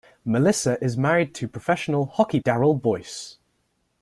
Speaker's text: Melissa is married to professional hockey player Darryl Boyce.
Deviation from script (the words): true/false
true